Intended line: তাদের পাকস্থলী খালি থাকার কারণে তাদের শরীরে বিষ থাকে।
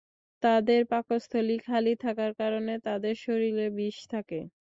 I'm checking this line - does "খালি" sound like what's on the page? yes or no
yes